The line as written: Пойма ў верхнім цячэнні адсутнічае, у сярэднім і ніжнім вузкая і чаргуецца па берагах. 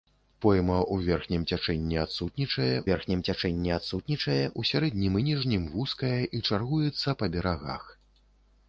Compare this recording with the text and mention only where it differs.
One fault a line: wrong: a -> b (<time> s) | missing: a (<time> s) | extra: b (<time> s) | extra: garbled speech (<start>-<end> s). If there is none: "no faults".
extra: верхнім цячэнні адсутнічае (2.9 s)